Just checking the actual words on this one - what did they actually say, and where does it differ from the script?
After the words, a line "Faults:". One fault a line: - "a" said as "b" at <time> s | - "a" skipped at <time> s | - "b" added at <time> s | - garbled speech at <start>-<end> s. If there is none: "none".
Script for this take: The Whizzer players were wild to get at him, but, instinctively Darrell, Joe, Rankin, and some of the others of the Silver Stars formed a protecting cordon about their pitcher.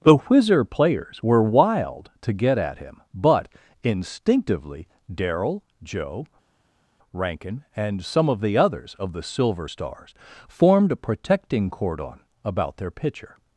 The Whizzer players were wild to get at him, but, instinctively Darrell, Joe, Rankin, and some of the others of the Silver Stars formed a protecting cordon about their pitcher.
Faults:
none